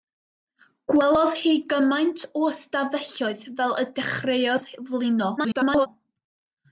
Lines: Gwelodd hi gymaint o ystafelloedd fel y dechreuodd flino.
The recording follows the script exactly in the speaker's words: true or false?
false